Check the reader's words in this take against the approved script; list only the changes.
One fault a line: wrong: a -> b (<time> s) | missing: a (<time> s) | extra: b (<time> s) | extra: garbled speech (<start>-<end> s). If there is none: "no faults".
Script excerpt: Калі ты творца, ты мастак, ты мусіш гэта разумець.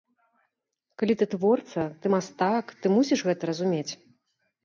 no faults